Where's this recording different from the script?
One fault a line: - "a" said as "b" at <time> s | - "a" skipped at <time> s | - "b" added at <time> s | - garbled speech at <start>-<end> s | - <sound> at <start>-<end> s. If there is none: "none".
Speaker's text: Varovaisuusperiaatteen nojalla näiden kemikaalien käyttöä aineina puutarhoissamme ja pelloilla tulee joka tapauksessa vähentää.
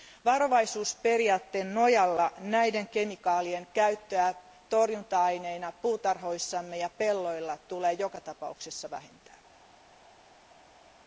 - "torjunta" added at 4.7 s